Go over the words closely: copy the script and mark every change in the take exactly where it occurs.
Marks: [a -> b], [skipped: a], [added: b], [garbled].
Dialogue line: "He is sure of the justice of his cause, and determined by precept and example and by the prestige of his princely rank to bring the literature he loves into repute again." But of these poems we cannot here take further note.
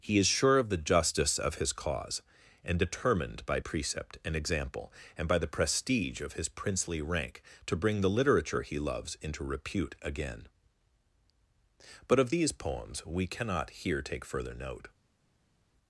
"He is sure of the justice of his cause, and determined by precept and example and by the prestige of his princely rank to bring the literature he loves into repute again." But of these poems we cannot here take further note.